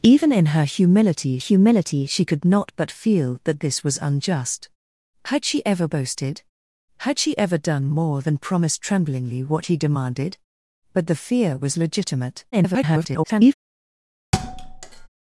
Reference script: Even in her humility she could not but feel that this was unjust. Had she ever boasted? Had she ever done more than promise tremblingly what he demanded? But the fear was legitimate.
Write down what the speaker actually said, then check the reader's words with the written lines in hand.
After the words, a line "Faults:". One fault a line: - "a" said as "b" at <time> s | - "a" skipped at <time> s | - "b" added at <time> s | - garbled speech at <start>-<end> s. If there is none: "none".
Even in her humility humility she could not but feel that this was unjust. Had she ever boasted? Had she ever done more than promise tremblingly what he demanded? But the fear was legitimate. [garbled]
Faults:
- "humility" added at 1.4 s
- garbled speech at 12.5-13.5 s